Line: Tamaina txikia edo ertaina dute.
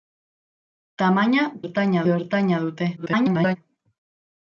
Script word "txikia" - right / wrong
wrong